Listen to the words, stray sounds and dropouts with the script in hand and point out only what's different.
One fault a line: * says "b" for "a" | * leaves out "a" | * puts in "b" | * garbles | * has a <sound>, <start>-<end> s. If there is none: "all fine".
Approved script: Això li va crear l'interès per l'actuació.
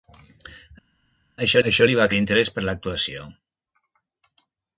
* puts in "això"
* leaves out "crear"